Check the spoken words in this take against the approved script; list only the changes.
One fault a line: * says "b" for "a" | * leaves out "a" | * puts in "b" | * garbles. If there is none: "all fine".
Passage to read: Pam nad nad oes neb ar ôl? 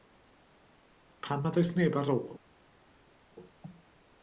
* leaves out "nad"